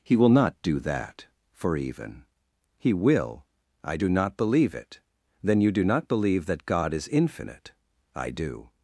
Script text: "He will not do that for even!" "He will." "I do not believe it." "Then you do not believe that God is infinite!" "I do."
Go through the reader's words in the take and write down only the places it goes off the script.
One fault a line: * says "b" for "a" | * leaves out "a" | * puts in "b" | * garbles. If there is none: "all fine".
all fine